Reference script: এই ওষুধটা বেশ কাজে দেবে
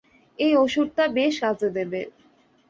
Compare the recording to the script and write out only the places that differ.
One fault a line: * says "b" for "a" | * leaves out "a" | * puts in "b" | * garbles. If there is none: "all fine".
all fine